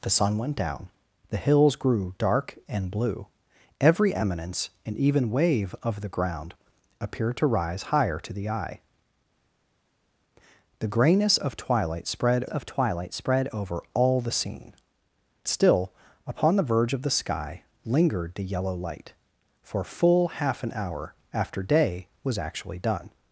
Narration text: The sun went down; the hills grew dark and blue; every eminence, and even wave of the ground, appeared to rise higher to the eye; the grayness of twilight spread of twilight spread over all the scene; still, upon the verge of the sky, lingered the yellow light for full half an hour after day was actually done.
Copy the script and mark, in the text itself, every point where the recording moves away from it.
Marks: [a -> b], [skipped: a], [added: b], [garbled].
The sun went down; the hills grew dark and blue; every eminence, and even wave of the ground, appeared to rise higher to the eye; the grayness of twilight spread of twilight spread over all the scene; still, upon the verge of the sky, lingered the yellow light for full half an hour after day was actually done.